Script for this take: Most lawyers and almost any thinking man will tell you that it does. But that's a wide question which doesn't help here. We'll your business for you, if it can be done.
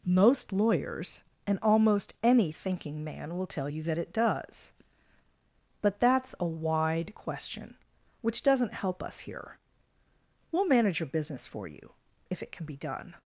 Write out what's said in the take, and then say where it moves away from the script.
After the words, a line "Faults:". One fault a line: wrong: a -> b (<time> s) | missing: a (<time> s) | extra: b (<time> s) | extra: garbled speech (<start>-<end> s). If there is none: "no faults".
Most lawyers and almost any thinking man will tell you that it does. But that's a wide question which doesn't help us here. We'll manage your business for you, if it can be done.
Faults:
extra: us (9.0 s)
extra: manage (10.7 s)